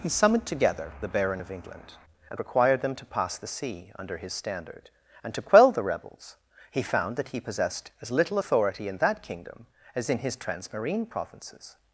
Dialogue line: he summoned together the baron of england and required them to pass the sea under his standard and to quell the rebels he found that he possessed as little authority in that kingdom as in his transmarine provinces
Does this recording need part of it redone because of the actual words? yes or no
no